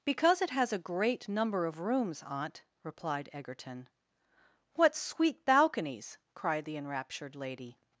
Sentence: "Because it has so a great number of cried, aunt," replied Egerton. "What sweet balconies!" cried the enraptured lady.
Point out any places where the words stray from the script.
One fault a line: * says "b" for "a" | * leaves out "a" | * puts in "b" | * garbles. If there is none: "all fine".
* leaves out "so"
* says "rooms" for "cried"